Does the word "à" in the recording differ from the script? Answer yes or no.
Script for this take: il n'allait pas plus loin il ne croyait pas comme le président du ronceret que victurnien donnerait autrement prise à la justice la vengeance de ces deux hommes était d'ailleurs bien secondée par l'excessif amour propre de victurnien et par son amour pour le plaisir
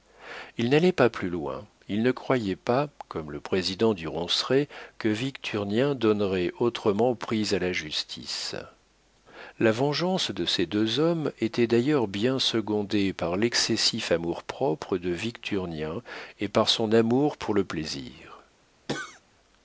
no